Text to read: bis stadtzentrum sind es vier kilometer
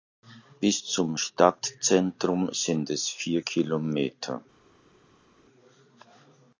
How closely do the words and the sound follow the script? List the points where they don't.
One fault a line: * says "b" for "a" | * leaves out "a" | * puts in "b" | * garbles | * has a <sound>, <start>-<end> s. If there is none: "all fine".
* puts in "zum"